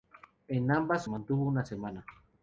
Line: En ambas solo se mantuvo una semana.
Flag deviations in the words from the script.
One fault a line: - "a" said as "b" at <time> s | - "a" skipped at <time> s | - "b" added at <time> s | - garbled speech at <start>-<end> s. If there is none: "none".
- "solo se" skipped at 1.1 s